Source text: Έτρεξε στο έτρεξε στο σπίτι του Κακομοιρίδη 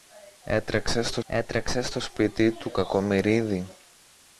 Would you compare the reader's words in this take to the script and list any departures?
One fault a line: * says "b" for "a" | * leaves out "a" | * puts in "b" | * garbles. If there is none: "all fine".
all fine